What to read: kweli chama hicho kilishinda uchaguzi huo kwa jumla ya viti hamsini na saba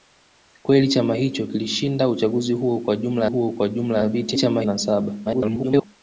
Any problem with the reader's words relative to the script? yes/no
yes